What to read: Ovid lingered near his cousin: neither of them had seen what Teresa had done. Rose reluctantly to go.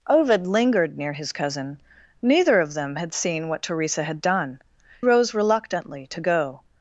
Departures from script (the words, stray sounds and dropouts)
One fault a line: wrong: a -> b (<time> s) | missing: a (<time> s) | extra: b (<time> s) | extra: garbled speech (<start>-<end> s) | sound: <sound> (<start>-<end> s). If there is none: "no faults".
no faults